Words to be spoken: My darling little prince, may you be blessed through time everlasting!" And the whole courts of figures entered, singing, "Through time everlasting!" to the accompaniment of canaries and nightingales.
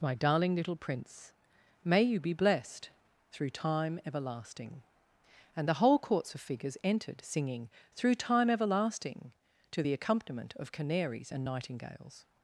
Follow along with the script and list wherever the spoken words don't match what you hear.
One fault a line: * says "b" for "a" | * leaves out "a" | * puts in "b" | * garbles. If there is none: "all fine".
all fine